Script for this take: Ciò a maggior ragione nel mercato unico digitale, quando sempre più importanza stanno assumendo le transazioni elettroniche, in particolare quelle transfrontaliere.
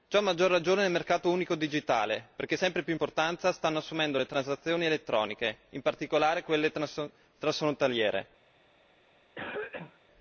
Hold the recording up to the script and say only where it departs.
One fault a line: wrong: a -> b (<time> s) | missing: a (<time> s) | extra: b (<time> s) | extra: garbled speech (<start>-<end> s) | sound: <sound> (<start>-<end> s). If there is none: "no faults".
wrong: quando -> perché (2.4 s)
sound: cough (9.4-10.0 s)